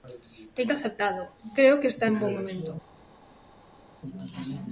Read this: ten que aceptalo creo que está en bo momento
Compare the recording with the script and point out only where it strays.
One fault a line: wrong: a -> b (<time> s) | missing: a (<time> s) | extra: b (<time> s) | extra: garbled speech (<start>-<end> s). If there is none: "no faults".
no faults